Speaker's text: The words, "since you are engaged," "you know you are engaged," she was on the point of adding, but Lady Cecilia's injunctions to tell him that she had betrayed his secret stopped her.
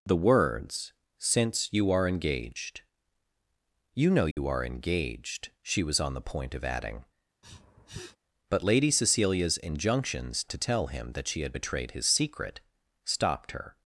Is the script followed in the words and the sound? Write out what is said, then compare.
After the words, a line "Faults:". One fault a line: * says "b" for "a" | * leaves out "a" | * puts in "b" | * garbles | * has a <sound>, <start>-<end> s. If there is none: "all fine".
The words, "since you are engaged," "you know you are engaged," she was on the point of adding, but Lady Cecilia's injunctions to tell him that she had betrayed his secret stopped her.
Faults:
* has a dropout, 4.3-4.4 s
* has a sniff, 7.4-8.2 s